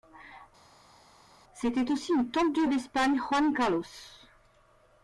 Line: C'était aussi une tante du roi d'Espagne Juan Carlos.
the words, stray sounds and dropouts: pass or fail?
fail